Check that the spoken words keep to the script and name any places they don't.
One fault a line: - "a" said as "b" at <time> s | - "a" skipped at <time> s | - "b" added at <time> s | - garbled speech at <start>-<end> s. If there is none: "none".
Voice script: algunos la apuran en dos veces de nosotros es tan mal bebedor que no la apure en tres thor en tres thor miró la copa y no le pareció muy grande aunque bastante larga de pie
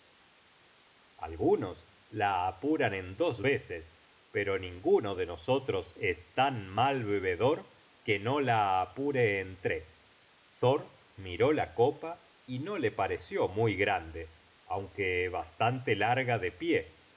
- "pero ninguno" added at 4.3 s
- "en tres thor" skipped at 10.9 s